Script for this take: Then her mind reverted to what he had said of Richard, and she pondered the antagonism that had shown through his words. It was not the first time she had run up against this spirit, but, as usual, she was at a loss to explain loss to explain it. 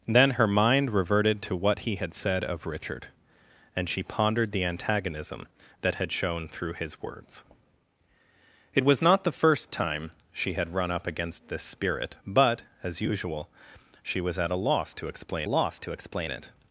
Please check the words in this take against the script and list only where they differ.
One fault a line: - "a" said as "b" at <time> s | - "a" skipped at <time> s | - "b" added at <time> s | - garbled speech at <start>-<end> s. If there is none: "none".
none